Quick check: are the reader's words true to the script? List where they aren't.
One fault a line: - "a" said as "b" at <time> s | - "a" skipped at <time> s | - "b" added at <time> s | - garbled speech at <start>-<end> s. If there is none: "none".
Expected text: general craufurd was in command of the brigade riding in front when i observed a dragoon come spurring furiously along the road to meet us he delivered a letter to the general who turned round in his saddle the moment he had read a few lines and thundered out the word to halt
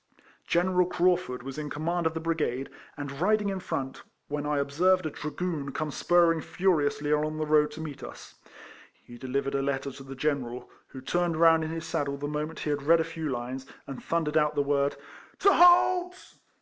- "and" added at 3.0 s